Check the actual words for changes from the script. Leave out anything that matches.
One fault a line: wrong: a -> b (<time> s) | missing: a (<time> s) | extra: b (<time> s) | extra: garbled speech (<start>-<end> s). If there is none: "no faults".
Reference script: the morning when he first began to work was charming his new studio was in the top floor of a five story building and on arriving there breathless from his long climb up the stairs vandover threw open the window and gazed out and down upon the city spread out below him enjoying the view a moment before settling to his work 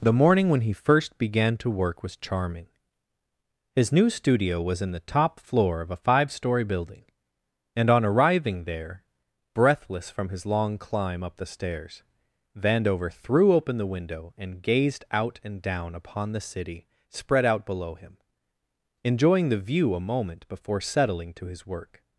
no faults